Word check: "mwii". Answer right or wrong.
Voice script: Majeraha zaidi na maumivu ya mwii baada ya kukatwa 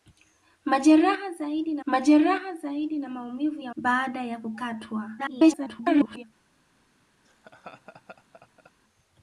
wrong